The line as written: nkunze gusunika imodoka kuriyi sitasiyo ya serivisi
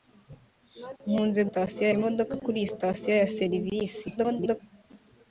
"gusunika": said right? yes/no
no